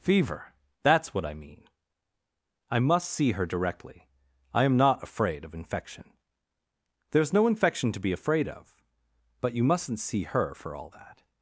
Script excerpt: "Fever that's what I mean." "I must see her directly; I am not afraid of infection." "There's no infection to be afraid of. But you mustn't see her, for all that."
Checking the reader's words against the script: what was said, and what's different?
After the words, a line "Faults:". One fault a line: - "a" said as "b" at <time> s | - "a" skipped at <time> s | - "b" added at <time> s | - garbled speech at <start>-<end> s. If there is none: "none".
"Fever that's what I mean." "I must see her directly; I am not afraid of infection." "There's no infection to be afraid of. But you mustn't see her, for all that."
Faults:
none